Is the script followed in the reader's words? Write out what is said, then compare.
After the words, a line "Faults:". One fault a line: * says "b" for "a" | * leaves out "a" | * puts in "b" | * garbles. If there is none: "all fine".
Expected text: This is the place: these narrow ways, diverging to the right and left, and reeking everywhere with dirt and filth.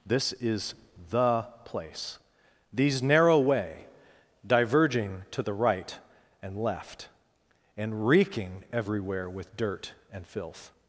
This is the place: these narrow way, diverging to the right and left, and reeking everywhere with dirt and filth.
Faults:
* says "way" for "ways"